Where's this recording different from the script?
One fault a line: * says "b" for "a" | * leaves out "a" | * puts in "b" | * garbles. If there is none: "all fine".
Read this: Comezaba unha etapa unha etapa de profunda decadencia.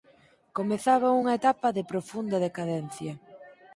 * leaves out "unha etapa"